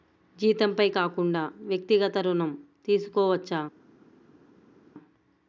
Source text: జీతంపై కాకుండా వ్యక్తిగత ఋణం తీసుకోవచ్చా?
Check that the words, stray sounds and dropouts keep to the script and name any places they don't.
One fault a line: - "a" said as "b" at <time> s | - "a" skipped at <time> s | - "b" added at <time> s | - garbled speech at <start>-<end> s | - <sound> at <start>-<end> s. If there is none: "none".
none